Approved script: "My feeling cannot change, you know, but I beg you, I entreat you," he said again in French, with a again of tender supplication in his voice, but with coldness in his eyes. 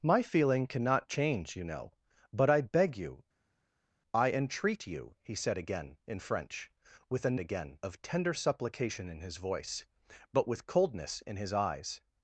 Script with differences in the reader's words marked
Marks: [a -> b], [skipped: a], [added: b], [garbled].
"My feeling cannot change, you know, but I beg you, I entreat you," he said again in French, with a again of tender supplication in his voice, but with coldness in his eyes.